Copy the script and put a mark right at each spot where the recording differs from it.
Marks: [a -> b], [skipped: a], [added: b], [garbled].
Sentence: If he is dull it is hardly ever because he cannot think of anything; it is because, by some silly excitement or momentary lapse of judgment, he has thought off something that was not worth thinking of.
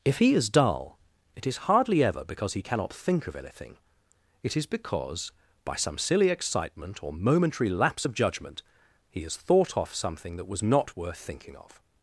If he is dull it is hardly ever because he cannot think of anything; it is because, by some silly excitement or momentary lapse of judgment, he has thought off something that was not worth thinking of.